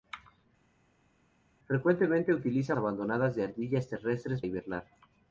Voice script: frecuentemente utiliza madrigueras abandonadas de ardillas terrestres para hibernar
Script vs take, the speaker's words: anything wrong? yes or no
yes